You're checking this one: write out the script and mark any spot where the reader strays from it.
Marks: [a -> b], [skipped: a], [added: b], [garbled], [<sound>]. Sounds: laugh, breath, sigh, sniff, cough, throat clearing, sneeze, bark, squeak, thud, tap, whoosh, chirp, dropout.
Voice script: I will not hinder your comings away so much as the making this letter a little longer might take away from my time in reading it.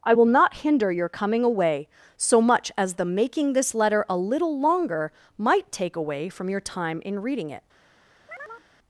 I will not hinder your [comings -> coming] away so much as the making this letter a little longer might take away from [my -> your] time in reading it. [chirp]